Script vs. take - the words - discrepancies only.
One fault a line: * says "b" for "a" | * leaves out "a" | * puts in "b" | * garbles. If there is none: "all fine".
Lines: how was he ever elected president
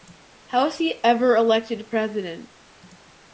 all fine